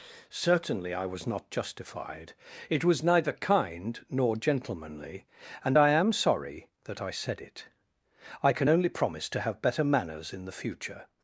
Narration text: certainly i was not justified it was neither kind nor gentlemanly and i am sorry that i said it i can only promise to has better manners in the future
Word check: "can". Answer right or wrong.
right